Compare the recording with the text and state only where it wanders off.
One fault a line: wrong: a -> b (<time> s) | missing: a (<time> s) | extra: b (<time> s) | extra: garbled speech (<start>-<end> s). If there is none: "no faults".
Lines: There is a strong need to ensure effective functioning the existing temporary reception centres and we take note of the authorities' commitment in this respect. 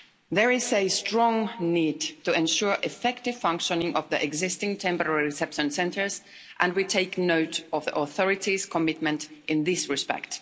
extra: of (3.9 s)